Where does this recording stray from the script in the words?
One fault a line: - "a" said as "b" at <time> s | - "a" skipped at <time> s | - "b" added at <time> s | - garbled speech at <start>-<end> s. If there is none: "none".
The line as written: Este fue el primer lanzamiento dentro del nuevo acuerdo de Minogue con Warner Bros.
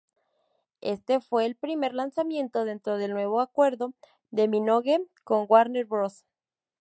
none